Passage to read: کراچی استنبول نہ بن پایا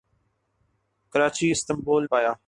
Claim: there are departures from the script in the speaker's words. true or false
true